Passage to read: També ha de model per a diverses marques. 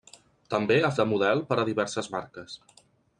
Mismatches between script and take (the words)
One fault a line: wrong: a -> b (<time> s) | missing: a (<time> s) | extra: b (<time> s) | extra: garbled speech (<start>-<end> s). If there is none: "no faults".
no faults